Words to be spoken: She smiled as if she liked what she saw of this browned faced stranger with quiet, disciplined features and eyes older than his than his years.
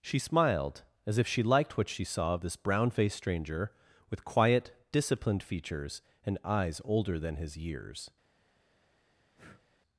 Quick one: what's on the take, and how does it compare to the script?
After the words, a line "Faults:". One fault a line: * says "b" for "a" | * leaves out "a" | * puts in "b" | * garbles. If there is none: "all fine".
She smiled as if she liked what she saw of this brown faced stranger with quiet, disciplined features and eyes older than his years.
Faults:
* says "brown" for "browned"
* leaves out "than his"